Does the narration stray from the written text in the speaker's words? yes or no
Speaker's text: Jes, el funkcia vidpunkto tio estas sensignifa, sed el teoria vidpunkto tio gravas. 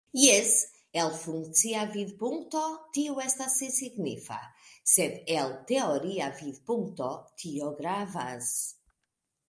no